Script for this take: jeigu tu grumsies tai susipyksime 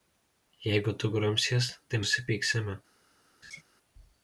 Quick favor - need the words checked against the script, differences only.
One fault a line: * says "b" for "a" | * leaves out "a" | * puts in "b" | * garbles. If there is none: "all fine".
all fine